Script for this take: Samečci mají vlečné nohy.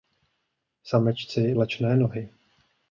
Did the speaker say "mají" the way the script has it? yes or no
no